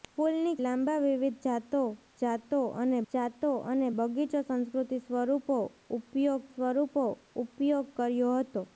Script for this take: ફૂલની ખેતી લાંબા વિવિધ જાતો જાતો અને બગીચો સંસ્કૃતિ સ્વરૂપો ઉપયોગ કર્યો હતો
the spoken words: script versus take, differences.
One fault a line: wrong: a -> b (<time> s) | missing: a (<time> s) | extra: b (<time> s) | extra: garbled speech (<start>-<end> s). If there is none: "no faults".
missing: ખેતી (0.5 s)
extra: જાતો અને (3.1 s)
extra: સ્વરૂપો ઉપયોગ (6.5 s)